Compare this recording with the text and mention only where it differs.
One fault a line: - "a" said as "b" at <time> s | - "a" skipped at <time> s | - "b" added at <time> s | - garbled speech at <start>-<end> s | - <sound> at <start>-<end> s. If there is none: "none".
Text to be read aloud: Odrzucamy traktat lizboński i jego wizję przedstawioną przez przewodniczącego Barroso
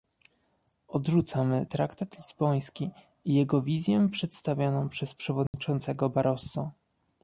- dropout at 5.5-5.5 s